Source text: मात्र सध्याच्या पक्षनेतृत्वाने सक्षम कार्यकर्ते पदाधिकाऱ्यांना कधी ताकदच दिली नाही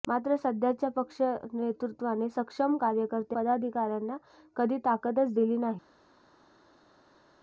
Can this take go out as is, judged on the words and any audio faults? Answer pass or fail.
pass